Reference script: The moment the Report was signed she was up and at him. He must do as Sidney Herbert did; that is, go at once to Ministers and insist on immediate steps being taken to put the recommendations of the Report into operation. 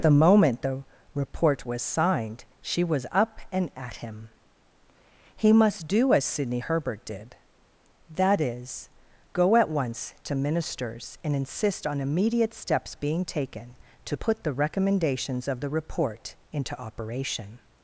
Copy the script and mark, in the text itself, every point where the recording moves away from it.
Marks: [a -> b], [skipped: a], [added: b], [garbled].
The moment the Report was signed she was up and at him. He must do as Sidney Herbert did; that is, go at once to Ministers and insist on immediate steps being taken to put the recommendations of the Report into operation.